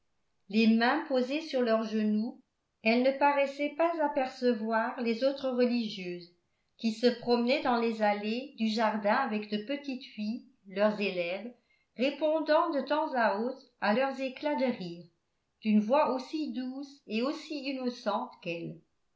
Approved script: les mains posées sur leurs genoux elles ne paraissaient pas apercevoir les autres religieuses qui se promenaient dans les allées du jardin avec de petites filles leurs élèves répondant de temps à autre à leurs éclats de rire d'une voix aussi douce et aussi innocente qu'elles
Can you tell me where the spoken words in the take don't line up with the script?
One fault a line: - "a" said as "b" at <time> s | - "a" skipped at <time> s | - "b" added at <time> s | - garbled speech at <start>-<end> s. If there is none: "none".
none